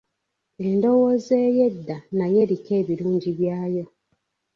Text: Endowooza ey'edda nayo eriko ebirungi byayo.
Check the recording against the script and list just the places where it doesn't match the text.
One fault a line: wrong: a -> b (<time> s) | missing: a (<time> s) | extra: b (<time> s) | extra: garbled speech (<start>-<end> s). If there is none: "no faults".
no faults